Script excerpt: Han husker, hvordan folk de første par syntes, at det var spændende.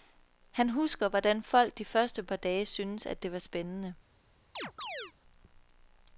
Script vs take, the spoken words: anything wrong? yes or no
yes